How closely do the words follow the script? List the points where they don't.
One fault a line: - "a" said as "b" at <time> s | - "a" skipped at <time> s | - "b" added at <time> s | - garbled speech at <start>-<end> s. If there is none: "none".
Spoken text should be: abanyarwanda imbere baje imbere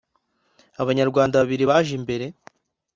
- "imbere" said as "babiri" at 1.4 s